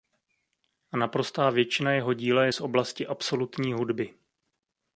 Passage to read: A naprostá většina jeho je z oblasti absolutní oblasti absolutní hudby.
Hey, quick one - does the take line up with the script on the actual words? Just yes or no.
no